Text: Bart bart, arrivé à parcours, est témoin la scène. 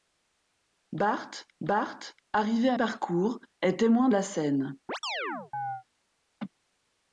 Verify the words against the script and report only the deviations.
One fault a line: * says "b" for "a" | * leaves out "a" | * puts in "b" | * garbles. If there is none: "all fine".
all fine